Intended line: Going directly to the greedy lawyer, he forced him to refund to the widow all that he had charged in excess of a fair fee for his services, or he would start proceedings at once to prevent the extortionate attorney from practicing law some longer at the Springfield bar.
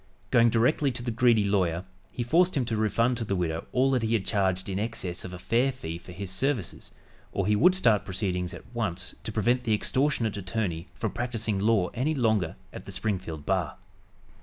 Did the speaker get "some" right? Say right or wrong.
wrong